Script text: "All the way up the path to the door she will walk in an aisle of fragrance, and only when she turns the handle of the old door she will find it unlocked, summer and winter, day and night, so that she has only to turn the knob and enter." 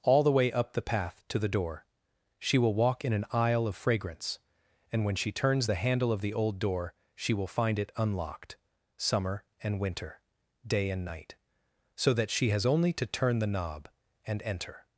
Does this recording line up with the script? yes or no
no